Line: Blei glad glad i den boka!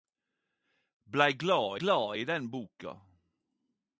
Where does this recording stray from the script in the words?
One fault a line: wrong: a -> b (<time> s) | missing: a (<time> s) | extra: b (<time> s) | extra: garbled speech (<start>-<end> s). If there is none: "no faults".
no faults